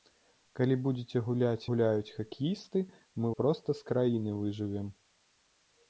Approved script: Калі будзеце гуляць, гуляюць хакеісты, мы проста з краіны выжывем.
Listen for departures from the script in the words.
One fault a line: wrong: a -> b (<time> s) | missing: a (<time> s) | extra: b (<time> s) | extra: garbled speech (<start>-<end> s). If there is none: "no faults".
no faults